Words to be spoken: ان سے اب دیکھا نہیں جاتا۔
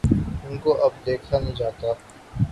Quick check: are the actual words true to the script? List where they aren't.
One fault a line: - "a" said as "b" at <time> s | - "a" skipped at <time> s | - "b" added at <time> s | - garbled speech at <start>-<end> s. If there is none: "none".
- "سے" said as "کو" at 0.6 s